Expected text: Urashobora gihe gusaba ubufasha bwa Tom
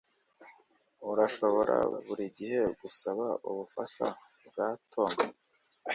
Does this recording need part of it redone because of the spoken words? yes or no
yes